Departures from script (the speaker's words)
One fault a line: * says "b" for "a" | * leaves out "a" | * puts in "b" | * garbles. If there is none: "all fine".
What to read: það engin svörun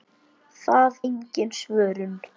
all fine